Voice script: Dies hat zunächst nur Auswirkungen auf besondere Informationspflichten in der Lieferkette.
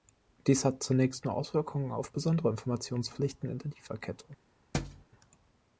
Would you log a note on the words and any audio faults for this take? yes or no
yes